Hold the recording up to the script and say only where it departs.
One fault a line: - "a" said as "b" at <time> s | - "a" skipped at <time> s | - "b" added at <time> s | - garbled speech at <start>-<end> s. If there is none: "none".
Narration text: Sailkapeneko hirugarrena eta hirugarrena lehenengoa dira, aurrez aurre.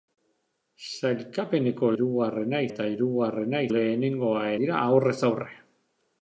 none